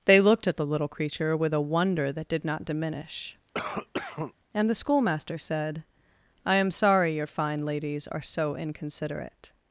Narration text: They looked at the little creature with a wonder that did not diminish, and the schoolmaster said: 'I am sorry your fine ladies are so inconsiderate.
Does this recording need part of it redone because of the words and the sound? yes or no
yes